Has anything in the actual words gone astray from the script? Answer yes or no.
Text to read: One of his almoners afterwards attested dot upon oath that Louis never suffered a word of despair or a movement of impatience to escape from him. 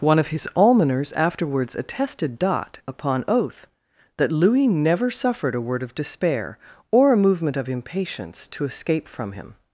no